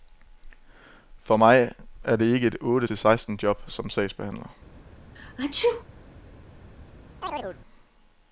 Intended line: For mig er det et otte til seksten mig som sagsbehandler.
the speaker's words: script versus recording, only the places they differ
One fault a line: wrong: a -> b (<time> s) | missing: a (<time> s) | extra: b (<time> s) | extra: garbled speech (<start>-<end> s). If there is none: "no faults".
extra: ikke (2.2 s)
wrong: mig -> job (3.4 s)